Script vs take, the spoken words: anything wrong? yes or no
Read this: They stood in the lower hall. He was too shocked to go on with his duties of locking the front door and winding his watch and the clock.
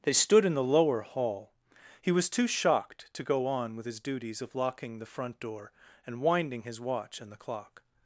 no